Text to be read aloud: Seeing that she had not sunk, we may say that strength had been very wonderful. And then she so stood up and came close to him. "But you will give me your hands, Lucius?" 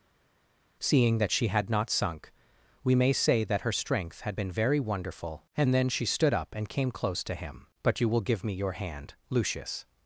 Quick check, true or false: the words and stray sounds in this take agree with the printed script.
false